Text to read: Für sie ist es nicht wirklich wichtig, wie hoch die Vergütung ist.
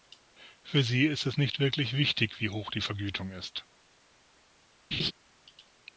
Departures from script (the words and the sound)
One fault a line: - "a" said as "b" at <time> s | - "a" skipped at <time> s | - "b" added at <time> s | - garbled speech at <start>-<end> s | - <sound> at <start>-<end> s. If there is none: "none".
- laugh at 4.9-5.1 s